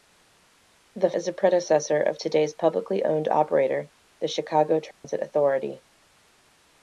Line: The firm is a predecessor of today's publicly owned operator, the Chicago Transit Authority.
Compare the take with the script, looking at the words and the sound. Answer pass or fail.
fail